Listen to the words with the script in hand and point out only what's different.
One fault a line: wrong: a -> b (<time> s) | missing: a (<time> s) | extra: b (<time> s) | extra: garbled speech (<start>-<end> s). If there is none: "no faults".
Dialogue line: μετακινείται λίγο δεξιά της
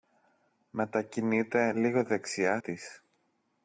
no faults